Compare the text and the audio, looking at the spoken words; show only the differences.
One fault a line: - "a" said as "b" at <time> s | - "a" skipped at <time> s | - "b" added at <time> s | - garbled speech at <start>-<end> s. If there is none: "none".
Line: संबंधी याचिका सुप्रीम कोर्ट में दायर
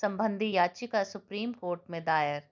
none